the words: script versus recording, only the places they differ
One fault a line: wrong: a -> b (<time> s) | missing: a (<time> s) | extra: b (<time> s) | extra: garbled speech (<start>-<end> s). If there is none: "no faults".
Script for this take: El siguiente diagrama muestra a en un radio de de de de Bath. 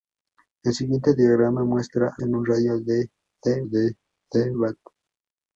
no faults